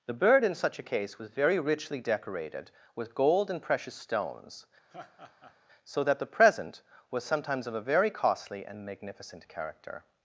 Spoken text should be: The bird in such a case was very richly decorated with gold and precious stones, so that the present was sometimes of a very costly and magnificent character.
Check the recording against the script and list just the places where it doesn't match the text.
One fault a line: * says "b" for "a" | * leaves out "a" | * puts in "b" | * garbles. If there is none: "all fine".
all fine